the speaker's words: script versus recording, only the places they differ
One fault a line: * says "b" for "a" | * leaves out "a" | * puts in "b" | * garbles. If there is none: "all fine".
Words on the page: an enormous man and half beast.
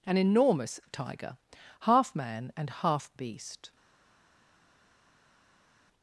* puts in "tiger half"